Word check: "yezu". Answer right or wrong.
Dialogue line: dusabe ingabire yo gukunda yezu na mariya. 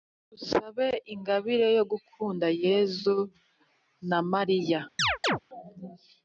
right